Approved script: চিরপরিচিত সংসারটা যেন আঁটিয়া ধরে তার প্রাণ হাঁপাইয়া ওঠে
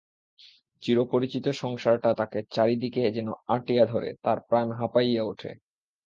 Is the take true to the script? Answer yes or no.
no